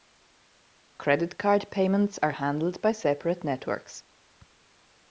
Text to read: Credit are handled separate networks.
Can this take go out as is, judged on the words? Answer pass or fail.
fail